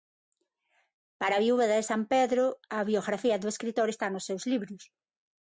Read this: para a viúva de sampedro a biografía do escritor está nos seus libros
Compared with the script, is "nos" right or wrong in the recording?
right